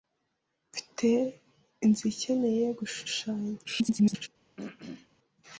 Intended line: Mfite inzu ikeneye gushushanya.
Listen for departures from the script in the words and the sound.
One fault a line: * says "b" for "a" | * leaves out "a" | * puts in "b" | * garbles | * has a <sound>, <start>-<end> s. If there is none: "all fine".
* garbles
* has a throat clearing, 4.6-5.1 s